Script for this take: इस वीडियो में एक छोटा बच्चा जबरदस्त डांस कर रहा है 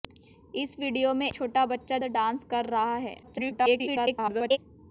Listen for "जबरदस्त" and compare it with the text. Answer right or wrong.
wrong